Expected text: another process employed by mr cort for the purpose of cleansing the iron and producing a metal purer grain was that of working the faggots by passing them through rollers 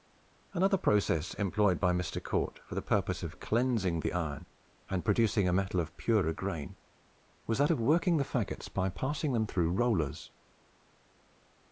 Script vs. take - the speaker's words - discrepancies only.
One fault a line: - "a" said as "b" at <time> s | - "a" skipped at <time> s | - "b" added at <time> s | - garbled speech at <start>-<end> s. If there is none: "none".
- "of" added at 5.8 s